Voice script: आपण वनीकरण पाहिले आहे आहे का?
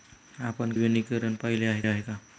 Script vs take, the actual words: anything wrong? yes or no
no